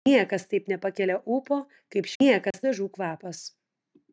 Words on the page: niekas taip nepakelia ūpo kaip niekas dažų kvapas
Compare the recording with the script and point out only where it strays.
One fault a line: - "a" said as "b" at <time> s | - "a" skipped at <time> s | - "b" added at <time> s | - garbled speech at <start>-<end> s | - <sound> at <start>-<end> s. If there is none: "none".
- dropout at 2.5-2.5 s